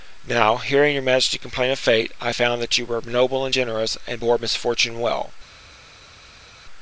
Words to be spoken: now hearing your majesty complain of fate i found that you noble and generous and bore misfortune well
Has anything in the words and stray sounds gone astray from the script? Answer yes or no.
yes